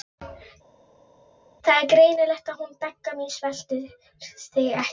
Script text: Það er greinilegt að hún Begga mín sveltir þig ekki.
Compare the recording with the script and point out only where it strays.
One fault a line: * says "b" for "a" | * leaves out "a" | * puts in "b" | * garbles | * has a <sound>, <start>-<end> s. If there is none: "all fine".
all fine